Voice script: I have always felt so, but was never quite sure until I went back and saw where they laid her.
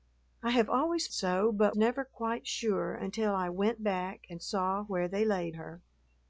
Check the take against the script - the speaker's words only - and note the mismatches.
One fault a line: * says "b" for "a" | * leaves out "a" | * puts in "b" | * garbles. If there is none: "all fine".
* leaves out "felt"
* leaves out "was"